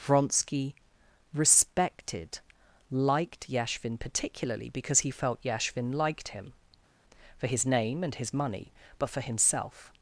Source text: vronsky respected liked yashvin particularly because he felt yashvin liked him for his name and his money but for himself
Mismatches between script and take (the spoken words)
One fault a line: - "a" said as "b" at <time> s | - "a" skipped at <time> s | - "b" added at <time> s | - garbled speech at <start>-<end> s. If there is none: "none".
none